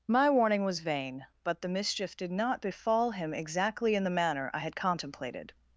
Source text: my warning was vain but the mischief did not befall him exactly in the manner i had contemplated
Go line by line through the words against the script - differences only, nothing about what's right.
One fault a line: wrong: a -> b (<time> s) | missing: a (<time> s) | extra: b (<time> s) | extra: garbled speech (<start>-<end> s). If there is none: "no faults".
no faults